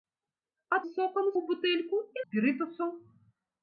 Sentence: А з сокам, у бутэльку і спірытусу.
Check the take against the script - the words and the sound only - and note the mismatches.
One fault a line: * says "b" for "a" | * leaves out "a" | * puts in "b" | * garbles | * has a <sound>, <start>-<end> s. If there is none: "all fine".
all fine